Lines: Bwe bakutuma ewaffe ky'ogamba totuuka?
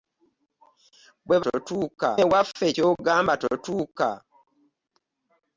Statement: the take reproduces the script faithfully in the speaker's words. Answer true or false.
false